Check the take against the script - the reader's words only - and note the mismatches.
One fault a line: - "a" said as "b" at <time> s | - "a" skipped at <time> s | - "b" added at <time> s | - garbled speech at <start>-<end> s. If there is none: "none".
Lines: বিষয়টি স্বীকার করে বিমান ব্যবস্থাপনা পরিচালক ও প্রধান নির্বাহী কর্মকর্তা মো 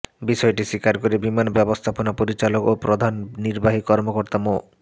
none